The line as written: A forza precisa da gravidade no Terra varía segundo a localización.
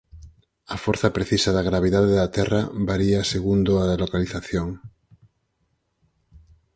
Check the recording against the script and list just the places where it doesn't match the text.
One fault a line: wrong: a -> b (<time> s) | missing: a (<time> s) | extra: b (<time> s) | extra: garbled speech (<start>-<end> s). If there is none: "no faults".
wrong: no -> da (2.2 s)